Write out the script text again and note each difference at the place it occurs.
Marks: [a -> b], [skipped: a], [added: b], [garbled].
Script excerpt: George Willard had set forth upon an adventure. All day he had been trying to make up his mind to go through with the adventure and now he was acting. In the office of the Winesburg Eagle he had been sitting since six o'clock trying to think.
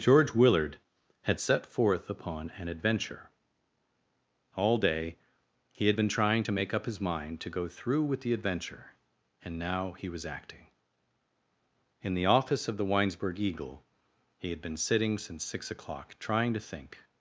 George Willard had set forth upon an adventure. All day he had been trying to make up his mind to go through with the adventure and now he was acting. In the office of the Winesburg Eagle he had been sitting since six o'clock trying to think.